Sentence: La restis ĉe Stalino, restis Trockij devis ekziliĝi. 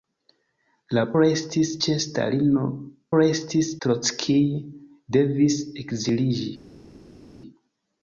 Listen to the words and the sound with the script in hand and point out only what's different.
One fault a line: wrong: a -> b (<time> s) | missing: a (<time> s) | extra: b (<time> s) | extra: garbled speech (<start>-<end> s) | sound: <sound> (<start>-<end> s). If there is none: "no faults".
no faults